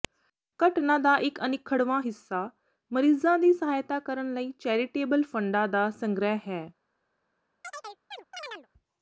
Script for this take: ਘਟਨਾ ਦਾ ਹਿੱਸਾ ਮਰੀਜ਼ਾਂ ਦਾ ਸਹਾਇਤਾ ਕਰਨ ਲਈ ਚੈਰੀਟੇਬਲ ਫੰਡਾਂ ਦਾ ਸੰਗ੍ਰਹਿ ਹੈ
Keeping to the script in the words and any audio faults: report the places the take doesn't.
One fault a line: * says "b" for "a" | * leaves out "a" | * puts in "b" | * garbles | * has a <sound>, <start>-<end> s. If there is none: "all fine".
* puts in "ਇੱਕ ਅਨਿੱਖੜਵਾਂ"
* says "ਦੀ" for "ਦਾ"
* has a chirp, 7.6-8.7 s